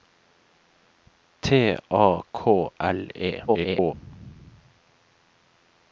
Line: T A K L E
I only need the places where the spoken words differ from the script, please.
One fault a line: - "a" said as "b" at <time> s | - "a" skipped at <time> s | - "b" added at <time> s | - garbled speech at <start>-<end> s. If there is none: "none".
- garbled speech at 3.5-3.9 s